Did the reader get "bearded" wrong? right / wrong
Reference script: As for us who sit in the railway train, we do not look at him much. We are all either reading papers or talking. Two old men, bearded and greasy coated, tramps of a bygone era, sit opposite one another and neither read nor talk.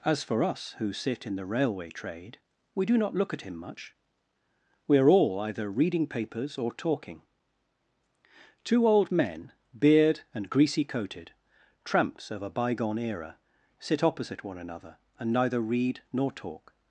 wrong